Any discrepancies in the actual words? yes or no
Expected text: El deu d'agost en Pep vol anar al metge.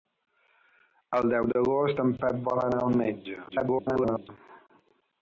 yes